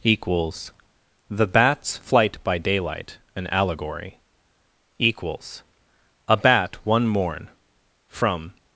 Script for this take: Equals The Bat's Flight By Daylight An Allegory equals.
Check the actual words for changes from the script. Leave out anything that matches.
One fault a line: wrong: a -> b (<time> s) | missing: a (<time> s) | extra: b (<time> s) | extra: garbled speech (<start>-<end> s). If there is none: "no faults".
extra: A Bat one morn from (6.3 s)